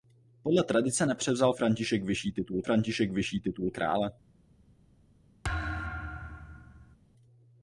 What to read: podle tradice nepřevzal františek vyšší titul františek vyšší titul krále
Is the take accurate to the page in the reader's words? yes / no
yes